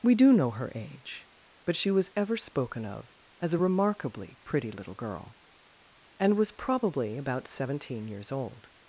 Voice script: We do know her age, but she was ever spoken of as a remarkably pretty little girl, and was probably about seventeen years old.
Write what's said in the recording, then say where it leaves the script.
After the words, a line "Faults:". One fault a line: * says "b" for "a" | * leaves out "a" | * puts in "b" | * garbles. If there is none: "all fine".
We do know her age, but she was ever spoken of as a remarkably pretty little girl, and was probably about seventeen years old.
Faults:
all fine